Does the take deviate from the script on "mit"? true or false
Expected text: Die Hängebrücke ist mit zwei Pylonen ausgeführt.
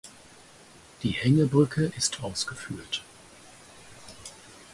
true